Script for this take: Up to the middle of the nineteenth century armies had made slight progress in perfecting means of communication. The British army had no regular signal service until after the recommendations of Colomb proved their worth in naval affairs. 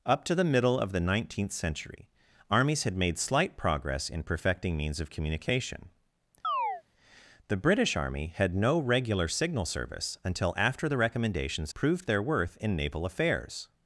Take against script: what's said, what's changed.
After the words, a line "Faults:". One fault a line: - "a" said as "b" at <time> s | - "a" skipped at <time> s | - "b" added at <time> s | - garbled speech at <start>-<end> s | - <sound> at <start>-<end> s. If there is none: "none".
Up to the middle of the nineteenth century armies had made slight progress in perfecting means of communication. The British army had no regular signal service until after the recommendations proved their worth in naval affairs.
Faults:
- chirp at 6.4-6.8 s
- "of Colomb" skipped at 11.7 s